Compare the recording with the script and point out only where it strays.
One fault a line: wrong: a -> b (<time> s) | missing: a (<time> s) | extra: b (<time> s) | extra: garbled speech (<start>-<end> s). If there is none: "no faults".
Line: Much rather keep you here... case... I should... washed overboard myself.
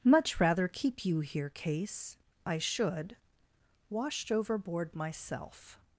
no faults